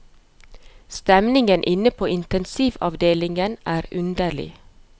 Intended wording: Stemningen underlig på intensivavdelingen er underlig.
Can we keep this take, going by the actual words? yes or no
no